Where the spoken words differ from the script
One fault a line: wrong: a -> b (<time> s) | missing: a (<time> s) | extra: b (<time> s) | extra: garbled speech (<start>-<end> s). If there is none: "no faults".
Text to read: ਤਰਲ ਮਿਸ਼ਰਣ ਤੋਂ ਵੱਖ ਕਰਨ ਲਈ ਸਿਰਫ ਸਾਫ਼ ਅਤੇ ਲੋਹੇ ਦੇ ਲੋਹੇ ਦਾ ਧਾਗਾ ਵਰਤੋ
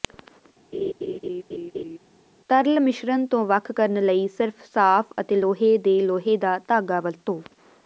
no faults